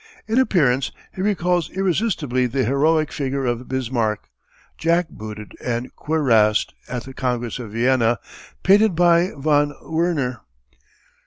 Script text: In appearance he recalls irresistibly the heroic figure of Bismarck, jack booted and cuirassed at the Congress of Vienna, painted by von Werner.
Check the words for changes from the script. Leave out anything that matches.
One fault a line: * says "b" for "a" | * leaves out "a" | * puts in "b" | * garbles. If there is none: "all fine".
all fine